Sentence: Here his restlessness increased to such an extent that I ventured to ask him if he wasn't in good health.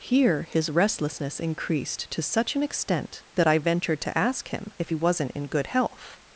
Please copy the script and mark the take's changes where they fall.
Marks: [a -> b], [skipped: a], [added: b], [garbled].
Here his restlessness increased to such an extent that I ventured to ask him if he wasn't in good health.